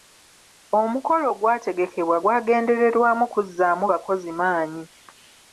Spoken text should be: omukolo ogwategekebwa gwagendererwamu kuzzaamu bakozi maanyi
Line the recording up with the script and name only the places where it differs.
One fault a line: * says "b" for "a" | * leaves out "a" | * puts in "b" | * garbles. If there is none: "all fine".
all fine